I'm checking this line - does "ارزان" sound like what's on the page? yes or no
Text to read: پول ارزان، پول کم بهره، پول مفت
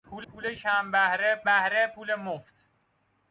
no